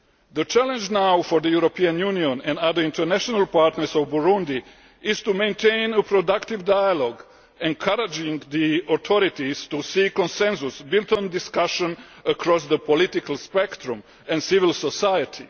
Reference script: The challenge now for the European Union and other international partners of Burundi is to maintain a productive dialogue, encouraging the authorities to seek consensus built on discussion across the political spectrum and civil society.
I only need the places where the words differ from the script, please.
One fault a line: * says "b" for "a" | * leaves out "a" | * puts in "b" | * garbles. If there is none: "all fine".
all fine